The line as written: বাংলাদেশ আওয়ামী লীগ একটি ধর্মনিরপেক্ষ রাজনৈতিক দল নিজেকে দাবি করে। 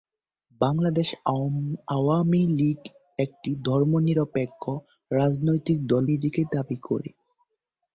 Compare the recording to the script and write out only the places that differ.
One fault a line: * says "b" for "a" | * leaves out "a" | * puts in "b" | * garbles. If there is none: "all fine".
all fine